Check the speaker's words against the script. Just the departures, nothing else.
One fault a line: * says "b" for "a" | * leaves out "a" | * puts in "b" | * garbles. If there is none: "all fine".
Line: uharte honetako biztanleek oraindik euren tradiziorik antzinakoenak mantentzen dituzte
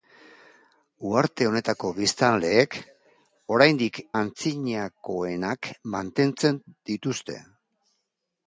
* leaves out "euren tradiziorik"